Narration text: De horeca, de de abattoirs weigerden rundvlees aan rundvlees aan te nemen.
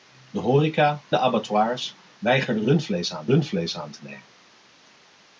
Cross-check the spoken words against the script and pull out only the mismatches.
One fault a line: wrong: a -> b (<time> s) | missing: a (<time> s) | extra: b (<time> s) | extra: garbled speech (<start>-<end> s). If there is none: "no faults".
no faults